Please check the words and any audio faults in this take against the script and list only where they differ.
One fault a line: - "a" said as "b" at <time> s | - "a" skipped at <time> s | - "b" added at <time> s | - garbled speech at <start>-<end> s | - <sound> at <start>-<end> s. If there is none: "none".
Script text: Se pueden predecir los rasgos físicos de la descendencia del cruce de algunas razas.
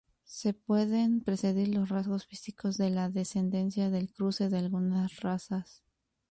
none